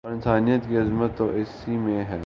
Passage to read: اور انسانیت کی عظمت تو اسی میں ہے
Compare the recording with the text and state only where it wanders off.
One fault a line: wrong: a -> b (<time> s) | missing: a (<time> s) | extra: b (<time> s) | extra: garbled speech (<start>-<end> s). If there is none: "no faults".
no faults